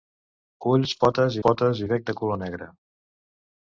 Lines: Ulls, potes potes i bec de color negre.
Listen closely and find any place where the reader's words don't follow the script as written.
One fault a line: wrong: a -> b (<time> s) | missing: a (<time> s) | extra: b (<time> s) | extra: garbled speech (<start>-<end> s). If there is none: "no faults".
no faults